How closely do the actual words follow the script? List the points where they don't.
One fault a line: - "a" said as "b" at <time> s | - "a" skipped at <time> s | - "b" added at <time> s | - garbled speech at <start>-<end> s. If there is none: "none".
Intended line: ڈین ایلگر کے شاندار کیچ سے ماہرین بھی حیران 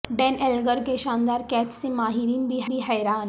- "بھی" added at 2.7 s